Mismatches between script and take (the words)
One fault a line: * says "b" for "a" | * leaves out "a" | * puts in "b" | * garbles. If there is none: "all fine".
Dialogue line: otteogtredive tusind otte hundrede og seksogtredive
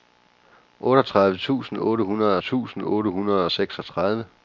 * puts in "tusind otte hundrede"